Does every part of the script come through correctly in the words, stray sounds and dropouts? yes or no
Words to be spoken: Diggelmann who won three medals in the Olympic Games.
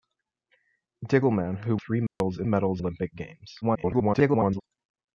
no